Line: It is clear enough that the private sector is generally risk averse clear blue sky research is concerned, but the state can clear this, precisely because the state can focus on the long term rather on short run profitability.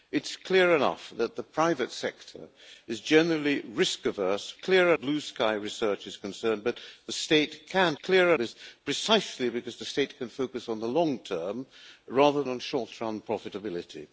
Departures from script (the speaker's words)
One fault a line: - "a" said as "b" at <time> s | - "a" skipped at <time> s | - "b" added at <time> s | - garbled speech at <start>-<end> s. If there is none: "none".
none